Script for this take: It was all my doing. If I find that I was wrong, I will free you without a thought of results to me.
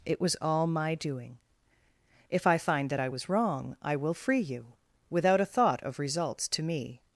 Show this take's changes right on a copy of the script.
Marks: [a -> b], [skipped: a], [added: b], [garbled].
It was all my doing. If I find that I was wrong, I will free you without a thought of results to me.